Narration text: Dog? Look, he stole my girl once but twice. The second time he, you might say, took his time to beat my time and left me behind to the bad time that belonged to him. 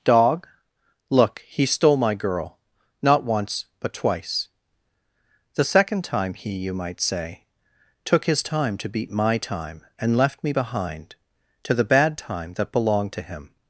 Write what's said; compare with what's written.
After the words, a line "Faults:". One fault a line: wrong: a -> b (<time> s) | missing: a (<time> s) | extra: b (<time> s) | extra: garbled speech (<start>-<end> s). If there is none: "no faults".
Dog? Look, he stole my girl not once but twice. The second time he, you might say, took his time to beat my time and left me behind to the bad time that belonged to him.
Faults:
extra: not (3.0 s)